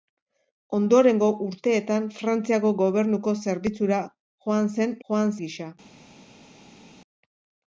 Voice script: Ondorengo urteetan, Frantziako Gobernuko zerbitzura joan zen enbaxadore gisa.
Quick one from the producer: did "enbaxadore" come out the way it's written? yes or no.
no